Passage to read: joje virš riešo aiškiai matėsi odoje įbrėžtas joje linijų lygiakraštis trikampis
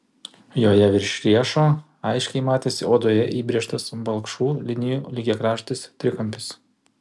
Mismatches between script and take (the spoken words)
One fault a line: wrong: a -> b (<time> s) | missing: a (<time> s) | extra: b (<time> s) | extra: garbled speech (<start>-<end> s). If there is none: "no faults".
wrong: joje -> balkšvų (4.1 s)